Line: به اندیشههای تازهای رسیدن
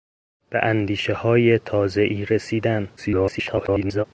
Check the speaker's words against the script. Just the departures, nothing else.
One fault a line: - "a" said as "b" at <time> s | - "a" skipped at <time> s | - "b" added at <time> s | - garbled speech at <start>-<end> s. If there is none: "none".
- garbled speech at 3.0-4.0 s